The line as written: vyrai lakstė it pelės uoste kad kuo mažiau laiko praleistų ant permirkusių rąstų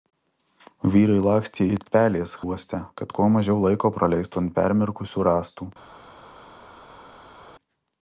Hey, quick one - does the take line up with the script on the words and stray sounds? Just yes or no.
yes